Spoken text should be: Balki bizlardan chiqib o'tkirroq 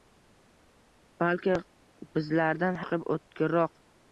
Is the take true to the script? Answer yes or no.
yes